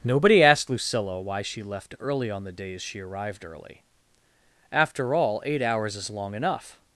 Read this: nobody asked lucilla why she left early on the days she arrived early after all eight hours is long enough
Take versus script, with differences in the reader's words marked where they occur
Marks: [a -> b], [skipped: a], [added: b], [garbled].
nobody asked lucilla why she left early on the days she arrived early after all eight hours is long enough